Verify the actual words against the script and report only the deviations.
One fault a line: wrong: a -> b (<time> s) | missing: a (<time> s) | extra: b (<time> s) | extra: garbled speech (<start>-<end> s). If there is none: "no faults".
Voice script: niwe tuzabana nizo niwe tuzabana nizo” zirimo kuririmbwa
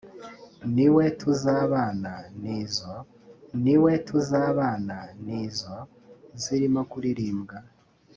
no faults